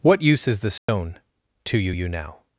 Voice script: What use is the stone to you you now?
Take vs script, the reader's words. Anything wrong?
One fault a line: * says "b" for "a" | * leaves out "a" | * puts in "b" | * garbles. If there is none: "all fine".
all fine